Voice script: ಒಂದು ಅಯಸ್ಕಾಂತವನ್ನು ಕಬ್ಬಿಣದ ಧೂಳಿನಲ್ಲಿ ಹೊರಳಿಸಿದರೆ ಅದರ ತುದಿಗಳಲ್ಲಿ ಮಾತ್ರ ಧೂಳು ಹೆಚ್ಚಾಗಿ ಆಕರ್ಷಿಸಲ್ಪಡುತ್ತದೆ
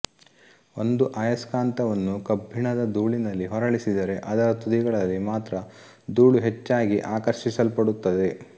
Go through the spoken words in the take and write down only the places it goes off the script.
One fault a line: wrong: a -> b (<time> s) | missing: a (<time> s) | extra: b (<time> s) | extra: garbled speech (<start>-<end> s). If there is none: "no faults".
no faults